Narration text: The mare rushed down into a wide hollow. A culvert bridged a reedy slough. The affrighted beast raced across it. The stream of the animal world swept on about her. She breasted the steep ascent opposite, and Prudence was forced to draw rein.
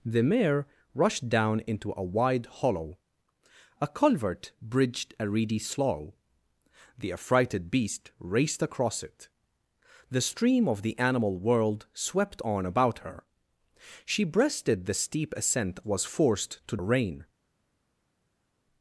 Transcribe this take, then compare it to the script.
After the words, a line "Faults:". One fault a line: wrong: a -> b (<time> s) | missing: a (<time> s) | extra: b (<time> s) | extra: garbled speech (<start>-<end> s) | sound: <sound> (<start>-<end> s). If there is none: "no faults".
The mare rushed down into a wide hollow. A culvert bridged a reedy slough. The affrighted beast raced across it. The stream of the animal world swept on about her. She breasted the steep ascent was forced to rein.
Faults:
missing: opposite and Prudence (15.8 s)
missing: draw (16.8 s)